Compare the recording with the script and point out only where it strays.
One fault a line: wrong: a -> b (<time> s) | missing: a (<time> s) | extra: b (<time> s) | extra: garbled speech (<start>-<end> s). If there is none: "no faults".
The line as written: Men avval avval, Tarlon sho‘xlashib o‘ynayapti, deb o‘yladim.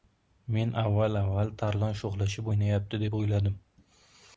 no faults